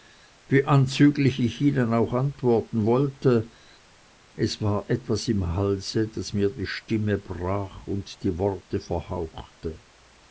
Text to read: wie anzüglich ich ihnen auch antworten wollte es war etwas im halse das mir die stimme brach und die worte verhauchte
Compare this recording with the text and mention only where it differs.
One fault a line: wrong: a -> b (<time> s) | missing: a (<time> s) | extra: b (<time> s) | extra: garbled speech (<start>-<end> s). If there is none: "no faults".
no faults